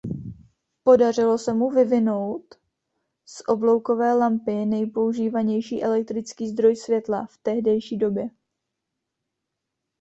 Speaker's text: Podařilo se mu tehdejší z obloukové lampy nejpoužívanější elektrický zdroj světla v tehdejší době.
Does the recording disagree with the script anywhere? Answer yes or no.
yes